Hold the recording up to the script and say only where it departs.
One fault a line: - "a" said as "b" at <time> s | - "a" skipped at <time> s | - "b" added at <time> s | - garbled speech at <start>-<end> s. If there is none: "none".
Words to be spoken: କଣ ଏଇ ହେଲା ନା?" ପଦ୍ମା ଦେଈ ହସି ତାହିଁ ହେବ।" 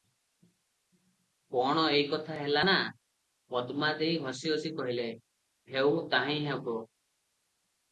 - "କଥା" added at 2.1 s
- "ହସି କହିଲେ ହେଉ" added at 4.5 s